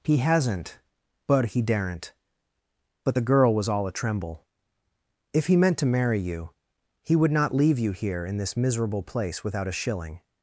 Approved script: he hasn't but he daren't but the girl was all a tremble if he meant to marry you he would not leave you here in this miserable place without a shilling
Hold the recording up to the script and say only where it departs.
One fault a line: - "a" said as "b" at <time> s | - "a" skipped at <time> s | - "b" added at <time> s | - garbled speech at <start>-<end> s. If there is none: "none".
none